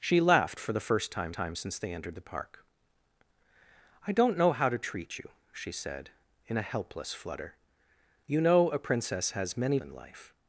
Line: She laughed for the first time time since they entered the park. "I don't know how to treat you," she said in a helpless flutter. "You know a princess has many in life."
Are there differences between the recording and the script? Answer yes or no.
no